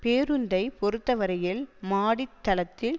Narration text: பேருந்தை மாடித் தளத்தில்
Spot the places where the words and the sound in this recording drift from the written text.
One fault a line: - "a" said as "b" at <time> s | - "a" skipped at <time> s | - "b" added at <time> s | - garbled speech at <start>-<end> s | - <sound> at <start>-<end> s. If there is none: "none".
- "பொறுத்தவரையில்" added at 0.8 s